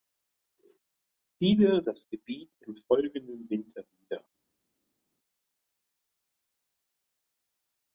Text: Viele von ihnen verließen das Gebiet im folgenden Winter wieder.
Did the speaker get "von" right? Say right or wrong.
wrong